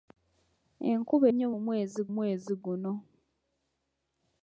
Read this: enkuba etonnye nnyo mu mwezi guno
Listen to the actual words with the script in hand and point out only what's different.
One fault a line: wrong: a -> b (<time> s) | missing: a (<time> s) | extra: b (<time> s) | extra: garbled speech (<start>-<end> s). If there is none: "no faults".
missing: etonnye (1.3 s)
extra: mwezi (2.2 s)